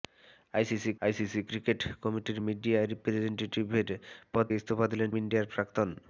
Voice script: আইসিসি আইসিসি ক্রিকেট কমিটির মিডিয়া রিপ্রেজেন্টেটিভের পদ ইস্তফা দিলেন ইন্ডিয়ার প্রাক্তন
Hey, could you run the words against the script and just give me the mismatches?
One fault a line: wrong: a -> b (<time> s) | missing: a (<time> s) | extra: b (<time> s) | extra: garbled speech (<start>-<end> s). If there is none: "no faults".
no faults